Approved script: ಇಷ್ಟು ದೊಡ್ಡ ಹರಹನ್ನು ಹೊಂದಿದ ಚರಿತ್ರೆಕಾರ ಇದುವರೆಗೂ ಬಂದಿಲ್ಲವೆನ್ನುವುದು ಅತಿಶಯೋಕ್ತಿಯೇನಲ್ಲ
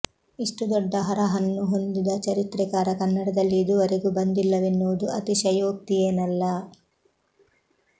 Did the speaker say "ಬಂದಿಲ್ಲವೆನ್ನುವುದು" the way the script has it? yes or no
yes